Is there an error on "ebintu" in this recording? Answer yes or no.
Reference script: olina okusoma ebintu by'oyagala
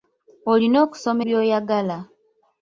yes